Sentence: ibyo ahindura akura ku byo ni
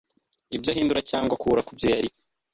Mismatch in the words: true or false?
true